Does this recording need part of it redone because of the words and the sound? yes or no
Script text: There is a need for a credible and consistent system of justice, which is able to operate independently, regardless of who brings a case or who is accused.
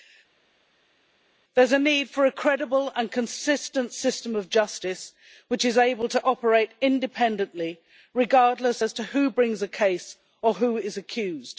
no